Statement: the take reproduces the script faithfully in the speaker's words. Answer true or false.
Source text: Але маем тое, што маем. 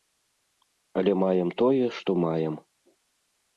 true